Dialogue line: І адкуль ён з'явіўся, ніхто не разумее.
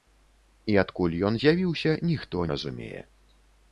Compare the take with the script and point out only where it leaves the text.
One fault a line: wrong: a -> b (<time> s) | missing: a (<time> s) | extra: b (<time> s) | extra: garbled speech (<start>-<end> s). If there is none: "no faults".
missing: не (2.5 s)